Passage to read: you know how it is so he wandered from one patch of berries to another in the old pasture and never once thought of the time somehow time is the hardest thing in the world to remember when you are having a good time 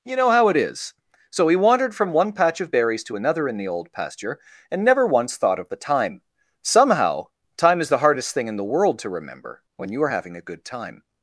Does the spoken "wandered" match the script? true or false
true